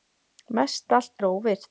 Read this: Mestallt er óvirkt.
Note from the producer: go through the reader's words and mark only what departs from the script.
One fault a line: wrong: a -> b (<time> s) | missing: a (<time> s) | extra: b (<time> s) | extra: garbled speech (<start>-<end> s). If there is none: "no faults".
no faults